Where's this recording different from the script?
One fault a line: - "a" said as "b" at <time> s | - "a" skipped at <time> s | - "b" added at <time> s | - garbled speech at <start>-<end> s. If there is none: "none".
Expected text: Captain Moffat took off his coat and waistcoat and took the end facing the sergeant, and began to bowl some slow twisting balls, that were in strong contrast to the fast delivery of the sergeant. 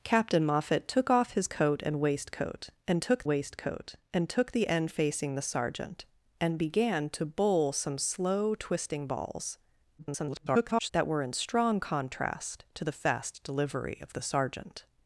- "waistcoat and took" added at 3.2 s
- garbled speech at 10.0-10.9 s